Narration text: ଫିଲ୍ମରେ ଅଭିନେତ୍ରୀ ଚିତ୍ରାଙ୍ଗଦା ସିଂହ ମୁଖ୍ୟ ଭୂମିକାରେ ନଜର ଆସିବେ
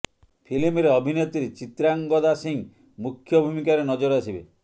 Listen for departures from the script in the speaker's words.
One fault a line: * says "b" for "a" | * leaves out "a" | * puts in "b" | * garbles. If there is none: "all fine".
all fine